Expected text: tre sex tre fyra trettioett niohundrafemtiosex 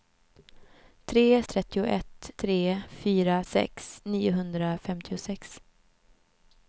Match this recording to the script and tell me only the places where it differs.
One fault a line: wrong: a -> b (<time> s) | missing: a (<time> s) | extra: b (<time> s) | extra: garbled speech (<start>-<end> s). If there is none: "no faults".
wrong: sex -> trettioett (1.4 s)
wrong: trettioett -> sex (3.4 s)